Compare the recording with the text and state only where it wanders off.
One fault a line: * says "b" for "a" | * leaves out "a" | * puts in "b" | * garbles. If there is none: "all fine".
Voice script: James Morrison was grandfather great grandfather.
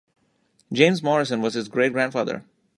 * says "his" for "grandfather"